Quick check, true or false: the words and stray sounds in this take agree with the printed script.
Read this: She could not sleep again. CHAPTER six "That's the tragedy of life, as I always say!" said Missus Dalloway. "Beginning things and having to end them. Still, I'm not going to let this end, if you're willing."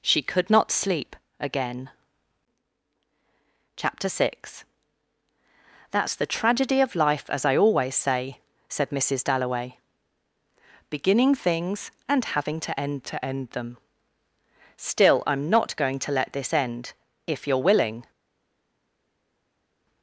false